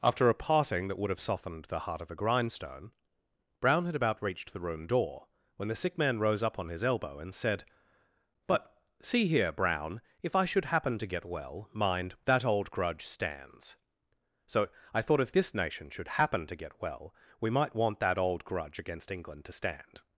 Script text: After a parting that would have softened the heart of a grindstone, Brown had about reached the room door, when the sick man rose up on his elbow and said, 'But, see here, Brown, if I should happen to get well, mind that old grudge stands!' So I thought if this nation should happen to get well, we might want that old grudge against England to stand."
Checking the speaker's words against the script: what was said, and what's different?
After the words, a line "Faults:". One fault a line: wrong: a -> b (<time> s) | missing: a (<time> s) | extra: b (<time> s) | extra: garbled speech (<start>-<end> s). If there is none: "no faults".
After a parting that would have softened the heart of a grindstone, Brown had about reached the room door, when the sick man rose up on his elbow and said, 'But, see here, Brown, if I should happen to get well, mind that old grudge stands!' So I thought if this nation should happen to get well, we might want that old grudge against England to stand."
Faults:
no faults